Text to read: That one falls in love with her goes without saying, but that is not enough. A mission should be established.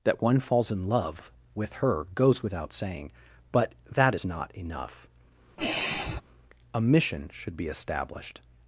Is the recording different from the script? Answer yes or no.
no